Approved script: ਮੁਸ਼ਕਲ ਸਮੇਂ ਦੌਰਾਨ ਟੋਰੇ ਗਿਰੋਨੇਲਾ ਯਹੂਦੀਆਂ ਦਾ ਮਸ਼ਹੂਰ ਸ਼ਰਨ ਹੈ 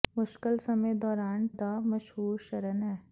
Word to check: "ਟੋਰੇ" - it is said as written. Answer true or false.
false